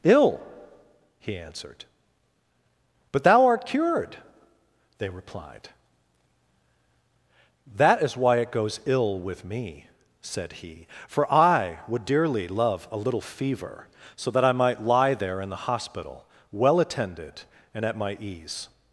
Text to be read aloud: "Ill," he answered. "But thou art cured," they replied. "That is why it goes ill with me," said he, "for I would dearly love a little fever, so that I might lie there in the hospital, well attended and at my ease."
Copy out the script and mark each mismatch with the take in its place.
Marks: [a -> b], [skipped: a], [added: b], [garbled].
"Ill," he answered. "But thou art cured," they replied. "That is why it goes ill with me," said he, "for I would dearly love a little fever, so that I might lie there in the hospital, well attended and at my ease."